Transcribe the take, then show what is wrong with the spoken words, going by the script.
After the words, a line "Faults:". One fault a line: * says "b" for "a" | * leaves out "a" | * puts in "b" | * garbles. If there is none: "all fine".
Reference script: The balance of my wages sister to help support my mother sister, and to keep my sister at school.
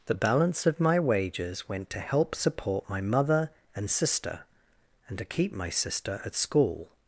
The balance of my wages went to help support my mother and sister, and to keep my sister at school.
Faults:
* says "went" for "sister"
* puts in "and"